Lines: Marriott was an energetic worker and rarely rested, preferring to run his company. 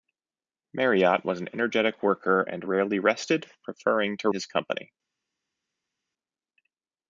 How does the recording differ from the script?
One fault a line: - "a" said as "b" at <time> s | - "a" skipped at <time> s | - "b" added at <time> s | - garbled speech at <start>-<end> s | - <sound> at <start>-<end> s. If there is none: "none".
- "run" skipped at 4.3 s